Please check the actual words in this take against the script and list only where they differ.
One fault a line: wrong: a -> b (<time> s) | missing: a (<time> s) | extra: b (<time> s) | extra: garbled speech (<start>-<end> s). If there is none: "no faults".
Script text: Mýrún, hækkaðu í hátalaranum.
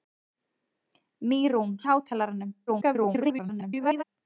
missing: hækkaðu (1.8 s)
extra: garbled speech (2.7-4.0 s)